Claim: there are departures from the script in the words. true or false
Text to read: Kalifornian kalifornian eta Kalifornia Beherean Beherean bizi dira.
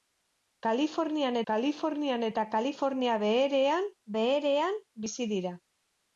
false